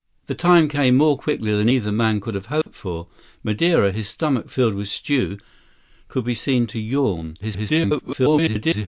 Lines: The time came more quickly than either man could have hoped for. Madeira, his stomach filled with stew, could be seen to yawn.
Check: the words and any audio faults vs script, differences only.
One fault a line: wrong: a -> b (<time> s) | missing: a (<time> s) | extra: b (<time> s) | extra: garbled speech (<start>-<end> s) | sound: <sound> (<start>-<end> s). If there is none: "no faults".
sound: dropout (2.6-2.7 s)
extra: garbled speech (7.4-8.9 s)